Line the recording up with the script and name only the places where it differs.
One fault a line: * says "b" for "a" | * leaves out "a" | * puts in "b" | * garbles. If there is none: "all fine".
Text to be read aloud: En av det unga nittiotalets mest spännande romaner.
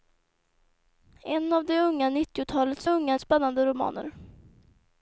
* says "unga" for "mest"